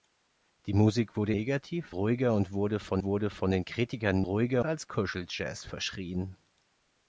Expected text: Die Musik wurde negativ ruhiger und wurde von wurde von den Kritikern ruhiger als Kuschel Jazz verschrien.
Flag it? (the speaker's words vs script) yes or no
no